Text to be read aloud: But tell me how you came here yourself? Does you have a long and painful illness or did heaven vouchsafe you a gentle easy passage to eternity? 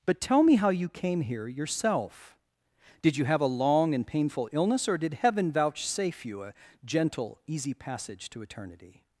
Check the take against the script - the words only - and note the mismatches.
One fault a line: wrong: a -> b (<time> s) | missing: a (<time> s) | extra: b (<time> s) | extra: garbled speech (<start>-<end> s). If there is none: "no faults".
wrong: Does -> Did (3.0 s)